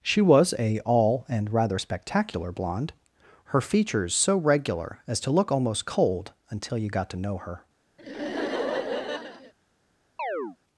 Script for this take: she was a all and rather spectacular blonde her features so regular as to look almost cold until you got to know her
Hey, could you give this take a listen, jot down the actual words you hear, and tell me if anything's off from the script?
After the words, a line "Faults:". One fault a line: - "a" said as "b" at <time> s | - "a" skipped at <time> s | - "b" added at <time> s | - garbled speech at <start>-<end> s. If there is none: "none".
she was a all and rather spectacular blonde her features so regular as to look almost cold until you got to know her
Faults:
none